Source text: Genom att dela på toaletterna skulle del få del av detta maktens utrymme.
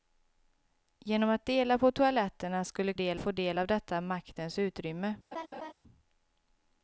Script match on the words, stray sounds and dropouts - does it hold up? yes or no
no